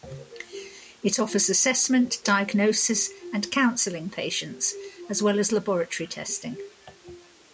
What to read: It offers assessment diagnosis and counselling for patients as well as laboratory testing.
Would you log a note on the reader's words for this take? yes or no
yes